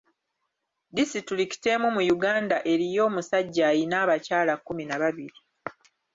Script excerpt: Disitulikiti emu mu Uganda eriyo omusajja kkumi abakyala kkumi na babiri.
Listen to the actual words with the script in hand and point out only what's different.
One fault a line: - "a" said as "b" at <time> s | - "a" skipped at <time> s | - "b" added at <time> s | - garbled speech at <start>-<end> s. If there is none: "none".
- "kkumi" said as "ayina" at 3.7 s